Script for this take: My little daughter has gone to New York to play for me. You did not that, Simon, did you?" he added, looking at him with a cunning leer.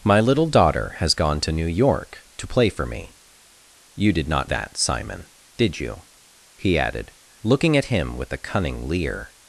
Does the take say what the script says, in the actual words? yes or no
yes